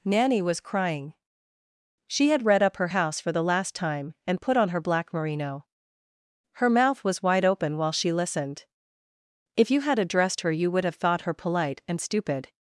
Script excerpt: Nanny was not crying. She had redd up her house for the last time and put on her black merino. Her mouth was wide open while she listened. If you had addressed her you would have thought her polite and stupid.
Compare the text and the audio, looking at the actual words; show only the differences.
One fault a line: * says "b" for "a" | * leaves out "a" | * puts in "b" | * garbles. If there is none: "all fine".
* leaves out "not"